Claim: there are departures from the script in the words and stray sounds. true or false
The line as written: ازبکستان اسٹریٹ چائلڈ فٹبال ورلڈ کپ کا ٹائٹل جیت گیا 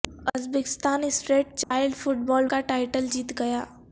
true